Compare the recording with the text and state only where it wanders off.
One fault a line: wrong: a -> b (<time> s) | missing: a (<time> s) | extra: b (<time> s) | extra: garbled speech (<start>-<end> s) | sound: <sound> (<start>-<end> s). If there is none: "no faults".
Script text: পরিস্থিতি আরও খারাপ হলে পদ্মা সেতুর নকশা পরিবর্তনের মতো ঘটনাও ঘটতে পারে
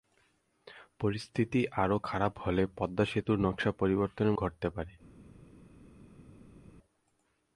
missing: মতো ঘটনাও (4.3 s)